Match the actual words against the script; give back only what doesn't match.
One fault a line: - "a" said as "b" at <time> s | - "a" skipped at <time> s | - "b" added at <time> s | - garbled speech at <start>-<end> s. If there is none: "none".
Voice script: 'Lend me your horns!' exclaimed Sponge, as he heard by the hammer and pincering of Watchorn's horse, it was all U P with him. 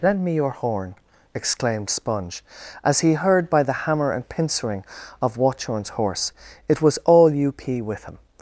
- "horns" said as "horn" at 0.5 s